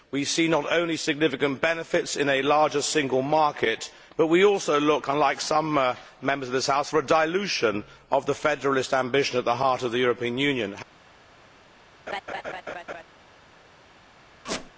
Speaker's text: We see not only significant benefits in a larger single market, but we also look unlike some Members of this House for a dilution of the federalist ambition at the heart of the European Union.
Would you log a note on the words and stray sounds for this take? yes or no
yes